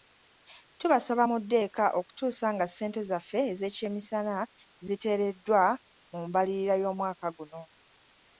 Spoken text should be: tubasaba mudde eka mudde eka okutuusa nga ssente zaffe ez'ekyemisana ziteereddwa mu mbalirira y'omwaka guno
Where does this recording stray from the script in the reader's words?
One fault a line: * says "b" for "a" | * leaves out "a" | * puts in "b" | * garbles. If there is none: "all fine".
* leaves out "mudde eka"